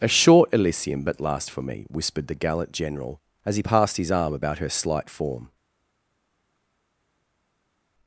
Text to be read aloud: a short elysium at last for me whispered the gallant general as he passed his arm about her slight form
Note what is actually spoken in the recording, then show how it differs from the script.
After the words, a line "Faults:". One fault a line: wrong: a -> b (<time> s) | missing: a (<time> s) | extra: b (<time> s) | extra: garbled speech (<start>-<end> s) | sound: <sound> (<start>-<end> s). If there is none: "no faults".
a short elysium but last for me whispered the gallant general as he passed his arm about her slight form
Faults:
wrong: at -> but (1.0 s)